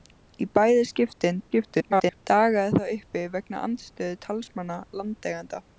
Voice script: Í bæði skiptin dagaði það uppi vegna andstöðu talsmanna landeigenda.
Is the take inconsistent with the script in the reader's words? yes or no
yes